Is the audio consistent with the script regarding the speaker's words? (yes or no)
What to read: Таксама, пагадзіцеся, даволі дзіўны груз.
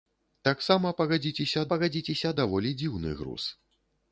no